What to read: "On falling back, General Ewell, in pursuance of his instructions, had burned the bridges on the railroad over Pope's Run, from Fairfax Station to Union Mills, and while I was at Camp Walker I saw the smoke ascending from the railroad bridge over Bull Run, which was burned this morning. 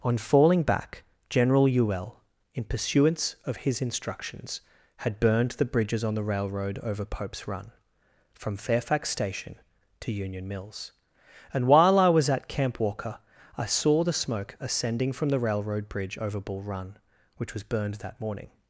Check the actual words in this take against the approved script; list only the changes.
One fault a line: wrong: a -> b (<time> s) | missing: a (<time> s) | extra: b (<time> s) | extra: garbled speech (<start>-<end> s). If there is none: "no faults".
wrong: this -> that (18.0 s)